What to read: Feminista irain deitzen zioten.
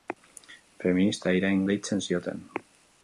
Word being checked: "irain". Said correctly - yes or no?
yes